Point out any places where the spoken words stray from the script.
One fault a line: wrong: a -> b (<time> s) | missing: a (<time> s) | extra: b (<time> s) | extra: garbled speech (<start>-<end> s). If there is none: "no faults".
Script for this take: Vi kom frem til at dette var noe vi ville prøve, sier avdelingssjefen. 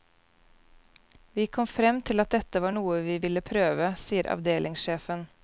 no faults